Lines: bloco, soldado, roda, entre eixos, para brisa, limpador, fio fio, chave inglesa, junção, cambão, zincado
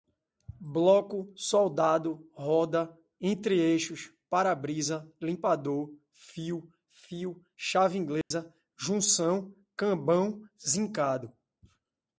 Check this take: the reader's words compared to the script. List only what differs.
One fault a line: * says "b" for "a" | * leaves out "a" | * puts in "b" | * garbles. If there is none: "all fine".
all fine